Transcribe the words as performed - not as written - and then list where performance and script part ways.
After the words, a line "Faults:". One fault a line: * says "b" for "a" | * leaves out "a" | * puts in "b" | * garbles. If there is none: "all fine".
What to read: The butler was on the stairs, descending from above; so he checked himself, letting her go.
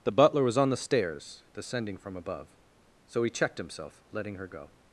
The butler was on the stairs, descending from above; so he checked himself, letting her go.
Faults:
all fine